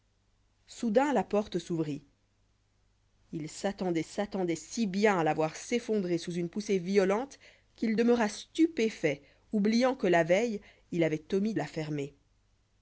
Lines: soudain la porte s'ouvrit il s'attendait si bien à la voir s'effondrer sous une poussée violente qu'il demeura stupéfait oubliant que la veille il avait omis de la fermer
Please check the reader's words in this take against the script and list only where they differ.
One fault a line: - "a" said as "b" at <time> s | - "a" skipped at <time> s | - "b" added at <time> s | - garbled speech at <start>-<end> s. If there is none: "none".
- "s'attendait" added at 4.0 s
- "de" skipped at 11.5 s